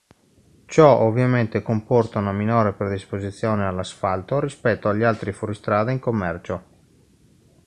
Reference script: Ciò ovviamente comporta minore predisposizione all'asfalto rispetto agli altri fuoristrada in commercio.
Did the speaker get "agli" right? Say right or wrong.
right